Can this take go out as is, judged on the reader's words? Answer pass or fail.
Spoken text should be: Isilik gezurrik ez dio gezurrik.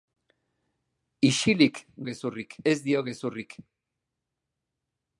pass